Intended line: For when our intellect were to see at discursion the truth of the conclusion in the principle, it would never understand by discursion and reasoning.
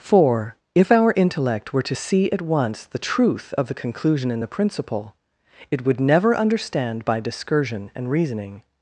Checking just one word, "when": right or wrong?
wrong